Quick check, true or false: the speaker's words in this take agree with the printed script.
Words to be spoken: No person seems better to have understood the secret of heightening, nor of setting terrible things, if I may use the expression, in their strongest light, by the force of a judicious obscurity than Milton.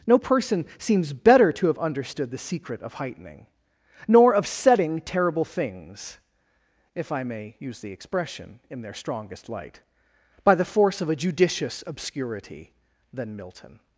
true